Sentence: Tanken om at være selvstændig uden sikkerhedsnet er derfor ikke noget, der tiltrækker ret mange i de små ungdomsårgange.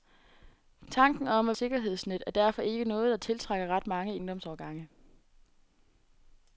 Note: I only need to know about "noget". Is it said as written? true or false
true